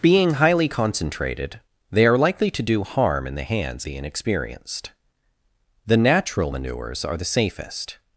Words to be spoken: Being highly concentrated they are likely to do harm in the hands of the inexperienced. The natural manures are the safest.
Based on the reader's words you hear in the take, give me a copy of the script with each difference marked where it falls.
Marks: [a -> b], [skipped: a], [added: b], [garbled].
Being highly concentrated they are likely to do harm in the hands [skipped: of] the inexperienced. The natural manures are the safest.